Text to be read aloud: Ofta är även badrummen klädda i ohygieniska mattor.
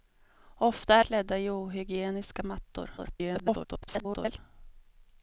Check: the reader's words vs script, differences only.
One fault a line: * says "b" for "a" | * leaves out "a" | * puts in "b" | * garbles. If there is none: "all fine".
* leaves out "även badrummen"
* garbles